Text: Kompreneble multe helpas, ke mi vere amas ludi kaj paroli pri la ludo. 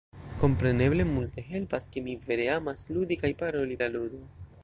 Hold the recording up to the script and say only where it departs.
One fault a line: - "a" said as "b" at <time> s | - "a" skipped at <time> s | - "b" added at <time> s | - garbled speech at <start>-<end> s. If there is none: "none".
- "pri" skipped at 3.8 s